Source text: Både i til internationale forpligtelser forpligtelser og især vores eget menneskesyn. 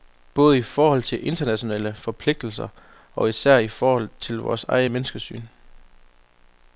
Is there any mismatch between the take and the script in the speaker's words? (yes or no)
yes